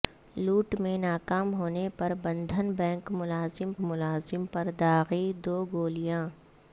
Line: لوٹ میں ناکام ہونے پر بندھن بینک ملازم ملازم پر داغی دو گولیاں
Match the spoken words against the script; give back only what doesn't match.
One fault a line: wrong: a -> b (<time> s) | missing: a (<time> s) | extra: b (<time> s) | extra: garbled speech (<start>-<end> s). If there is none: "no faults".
no faults